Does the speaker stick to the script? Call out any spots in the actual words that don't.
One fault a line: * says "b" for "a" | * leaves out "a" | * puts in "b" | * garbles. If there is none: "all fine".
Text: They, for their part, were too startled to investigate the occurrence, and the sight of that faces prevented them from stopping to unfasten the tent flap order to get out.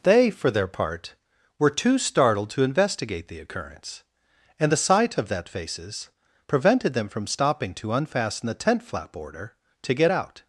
all fine